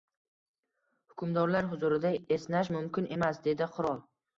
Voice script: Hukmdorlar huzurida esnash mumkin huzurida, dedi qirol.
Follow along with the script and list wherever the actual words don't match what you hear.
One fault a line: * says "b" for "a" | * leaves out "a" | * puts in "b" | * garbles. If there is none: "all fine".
* says "emas" for "huzurida"